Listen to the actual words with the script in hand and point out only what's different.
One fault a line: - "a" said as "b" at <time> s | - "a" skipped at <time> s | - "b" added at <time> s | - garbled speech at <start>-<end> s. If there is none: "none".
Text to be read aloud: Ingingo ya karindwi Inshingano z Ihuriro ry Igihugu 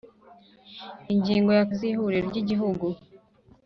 - "karindwi Inshingano" skipped at 1.6 s